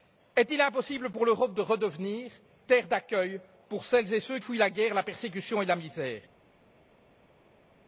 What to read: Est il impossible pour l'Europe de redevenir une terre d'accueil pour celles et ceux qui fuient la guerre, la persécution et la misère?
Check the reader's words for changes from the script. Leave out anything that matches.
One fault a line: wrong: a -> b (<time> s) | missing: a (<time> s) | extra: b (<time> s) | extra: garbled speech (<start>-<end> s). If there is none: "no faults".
missing: une (2.3 s)
missing: qui (4.4 s)